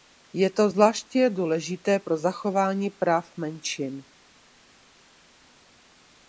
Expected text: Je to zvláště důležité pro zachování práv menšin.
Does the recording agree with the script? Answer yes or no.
yes